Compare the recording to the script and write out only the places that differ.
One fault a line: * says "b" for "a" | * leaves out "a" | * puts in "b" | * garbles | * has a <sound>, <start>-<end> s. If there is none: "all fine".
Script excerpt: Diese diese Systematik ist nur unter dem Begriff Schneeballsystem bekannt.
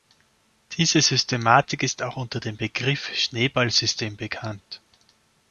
* leaves out "diese"
* says "auch" for "nur"